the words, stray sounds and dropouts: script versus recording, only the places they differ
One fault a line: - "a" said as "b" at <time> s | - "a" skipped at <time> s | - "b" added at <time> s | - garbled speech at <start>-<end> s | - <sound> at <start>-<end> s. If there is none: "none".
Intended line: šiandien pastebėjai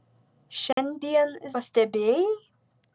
- dropout at 0.7-0.8 s